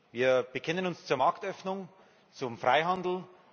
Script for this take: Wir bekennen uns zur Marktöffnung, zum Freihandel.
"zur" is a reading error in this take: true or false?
false